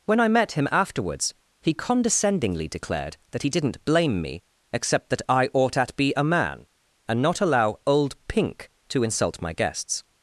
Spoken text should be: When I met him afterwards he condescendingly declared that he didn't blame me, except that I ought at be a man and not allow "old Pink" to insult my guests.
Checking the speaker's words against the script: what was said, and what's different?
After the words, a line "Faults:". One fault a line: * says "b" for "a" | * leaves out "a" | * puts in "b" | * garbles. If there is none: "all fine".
When I met him afterwards he condescendingly declared that he didn't blame me, except that I ought at be a man and not allow "old Pink" to insult my guests.
Faults:
all fine